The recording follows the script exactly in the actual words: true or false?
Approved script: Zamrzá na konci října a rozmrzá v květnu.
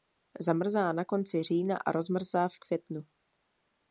true